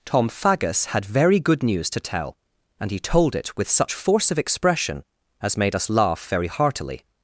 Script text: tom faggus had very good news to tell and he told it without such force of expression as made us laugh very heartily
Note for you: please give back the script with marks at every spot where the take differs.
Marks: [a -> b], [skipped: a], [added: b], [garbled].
tom faggus had very good news to tell and he told it [without -> with] such force of expression as made us laugh very heartily